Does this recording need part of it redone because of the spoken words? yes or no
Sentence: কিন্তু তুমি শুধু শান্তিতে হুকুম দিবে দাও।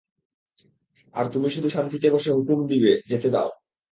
yes